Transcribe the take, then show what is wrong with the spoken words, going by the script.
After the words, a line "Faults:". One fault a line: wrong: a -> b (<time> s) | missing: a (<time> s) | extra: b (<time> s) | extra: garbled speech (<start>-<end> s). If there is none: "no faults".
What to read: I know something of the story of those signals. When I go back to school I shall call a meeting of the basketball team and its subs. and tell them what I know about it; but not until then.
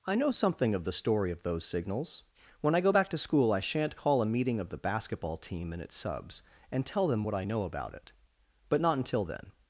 I know something of the story of those signals. When I go back to school I shan't call a meeting of the basketball team and its subs. and tell them what I know about it; but not until then.
Faults:
wrong: shall -> shan't (3.6 s)